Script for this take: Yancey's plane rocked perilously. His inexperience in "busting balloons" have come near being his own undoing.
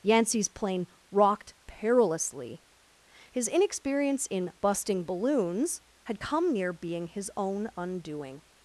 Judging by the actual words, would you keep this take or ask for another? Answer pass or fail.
fail